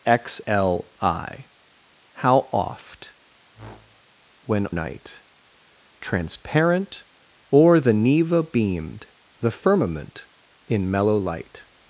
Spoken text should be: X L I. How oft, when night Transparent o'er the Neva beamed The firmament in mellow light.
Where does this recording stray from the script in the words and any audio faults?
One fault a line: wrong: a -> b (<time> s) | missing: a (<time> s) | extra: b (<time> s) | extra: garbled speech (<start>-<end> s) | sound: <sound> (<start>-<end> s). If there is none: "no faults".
sound: whoosh (3.5-4.0 s)